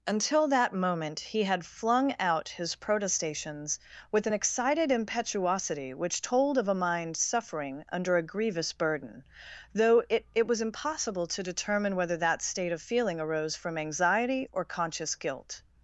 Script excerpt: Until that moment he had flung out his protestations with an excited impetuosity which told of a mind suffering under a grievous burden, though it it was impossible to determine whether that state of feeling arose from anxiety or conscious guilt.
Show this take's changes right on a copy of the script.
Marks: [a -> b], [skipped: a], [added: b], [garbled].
Until that moment he had flung out his protestations with an excited impetuosity which told of a mind suffering under a grievous burden, though it it was impossible to determine whether that state of feeling arose from anxiety or conscious guilt.